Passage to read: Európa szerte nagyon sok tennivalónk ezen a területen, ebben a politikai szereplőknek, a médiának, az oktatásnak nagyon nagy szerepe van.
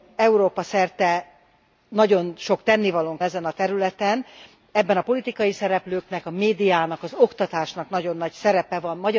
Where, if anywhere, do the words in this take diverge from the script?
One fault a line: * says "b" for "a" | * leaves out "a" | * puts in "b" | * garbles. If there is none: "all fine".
all fine